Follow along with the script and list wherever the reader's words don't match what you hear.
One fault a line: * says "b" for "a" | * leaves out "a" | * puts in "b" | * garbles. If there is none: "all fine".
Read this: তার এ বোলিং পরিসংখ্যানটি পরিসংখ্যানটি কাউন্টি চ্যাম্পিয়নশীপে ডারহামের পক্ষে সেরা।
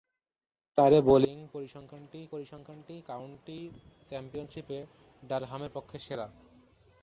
all fine